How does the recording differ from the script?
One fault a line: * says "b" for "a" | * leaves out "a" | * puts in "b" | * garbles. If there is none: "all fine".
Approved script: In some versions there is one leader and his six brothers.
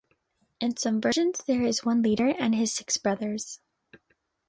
all fine